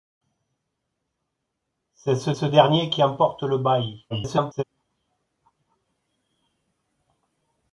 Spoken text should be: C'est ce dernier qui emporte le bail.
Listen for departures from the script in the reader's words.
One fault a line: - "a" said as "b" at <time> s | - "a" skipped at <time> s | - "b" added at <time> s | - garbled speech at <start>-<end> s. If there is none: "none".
- "ce" added at 2.3 s
- garbled speech at 4.1-4.6 s